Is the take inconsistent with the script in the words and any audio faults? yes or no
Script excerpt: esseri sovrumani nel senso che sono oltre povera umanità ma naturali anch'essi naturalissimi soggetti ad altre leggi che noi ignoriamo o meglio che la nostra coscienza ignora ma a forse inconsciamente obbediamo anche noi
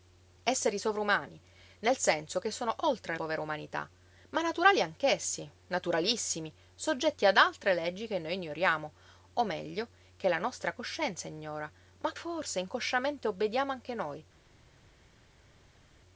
no